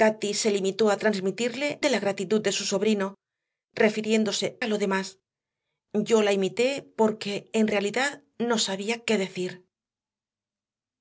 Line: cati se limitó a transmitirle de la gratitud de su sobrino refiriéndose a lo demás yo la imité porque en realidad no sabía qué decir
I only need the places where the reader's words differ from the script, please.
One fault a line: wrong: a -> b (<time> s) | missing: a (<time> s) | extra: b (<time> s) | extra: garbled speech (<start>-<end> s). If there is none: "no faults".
no faults